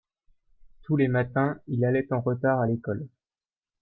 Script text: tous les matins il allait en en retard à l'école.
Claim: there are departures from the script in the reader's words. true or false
true